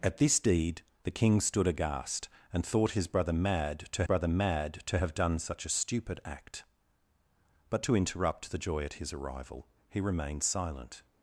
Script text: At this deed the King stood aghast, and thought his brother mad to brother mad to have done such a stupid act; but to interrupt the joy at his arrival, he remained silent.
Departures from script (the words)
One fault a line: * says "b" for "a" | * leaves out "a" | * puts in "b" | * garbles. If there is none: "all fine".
all fine